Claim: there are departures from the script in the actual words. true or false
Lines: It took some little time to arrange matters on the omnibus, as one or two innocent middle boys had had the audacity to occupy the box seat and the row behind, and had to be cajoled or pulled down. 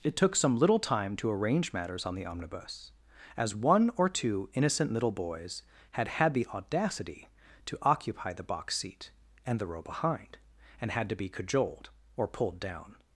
true